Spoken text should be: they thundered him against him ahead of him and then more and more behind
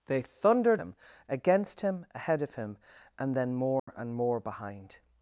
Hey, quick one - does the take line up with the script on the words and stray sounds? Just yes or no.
no